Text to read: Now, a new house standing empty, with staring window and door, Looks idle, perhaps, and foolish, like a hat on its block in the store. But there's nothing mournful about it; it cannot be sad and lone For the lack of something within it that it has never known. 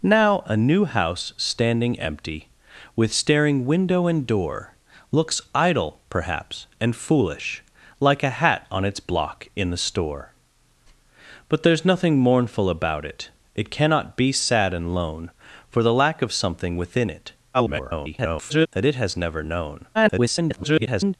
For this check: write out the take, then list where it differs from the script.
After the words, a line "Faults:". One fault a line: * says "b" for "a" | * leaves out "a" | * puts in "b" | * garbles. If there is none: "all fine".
Now, a new house standing empty, with staring window and door, Looks idle, perhaps, and foolish, like a hat on its block in the store. But there's nothing mournful about it; it cannot be sad and lone For the lack of something within it [garbled] that it has never known. [garbled]
Faults:
* garbles
* garbles